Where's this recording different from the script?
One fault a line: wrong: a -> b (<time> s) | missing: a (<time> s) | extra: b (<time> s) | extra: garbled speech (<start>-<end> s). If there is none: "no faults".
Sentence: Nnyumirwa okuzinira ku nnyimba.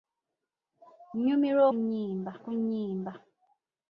wrong: okuzinira -> nnyimba (1.8 s)